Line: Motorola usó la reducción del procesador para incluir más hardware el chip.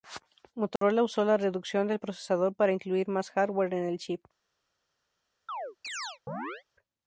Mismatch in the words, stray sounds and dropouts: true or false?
true